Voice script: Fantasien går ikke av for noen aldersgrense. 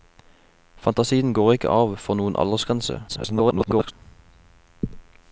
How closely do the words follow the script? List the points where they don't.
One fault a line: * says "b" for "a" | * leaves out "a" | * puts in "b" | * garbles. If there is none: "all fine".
* garbles